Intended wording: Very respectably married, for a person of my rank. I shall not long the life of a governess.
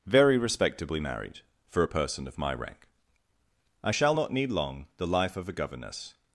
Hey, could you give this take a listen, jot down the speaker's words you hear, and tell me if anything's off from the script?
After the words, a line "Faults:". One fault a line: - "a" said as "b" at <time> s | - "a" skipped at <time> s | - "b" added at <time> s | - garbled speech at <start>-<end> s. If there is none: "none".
Very respectably married, for a person of my rank. I shall not need long the life of a governess.
Faults:
- "need" added at 4.3 s